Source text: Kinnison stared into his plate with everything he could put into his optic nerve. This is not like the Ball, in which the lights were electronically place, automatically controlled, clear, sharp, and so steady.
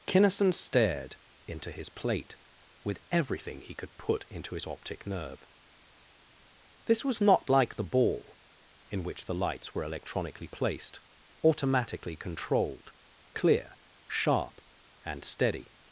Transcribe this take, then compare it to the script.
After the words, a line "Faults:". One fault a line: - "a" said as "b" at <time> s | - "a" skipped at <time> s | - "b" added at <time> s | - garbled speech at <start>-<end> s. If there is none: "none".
Kinnison stared into his plate with everything he could put into his optic nerve. This was not like the Ball, in which the lights were electronically placed, automatically controlled, clear, sharp, and steady.
Faults:
- "is" said as "was" at 7.0 s
- "place" said as "placed" at 10.5 s
- "so" skipped at 15.2 s